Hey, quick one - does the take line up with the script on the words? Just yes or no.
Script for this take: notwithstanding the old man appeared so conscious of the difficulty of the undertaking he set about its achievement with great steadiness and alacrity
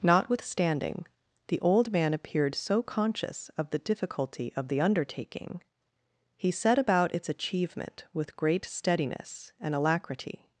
yes